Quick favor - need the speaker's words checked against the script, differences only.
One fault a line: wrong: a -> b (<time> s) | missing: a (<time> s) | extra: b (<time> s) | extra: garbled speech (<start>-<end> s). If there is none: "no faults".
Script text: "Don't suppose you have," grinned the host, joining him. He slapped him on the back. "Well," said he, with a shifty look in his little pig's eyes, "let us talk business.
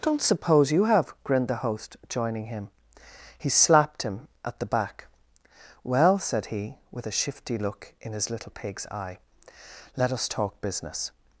wrong: on -> at (4.4 s)
wrong: eyes -> eye (8.9 s)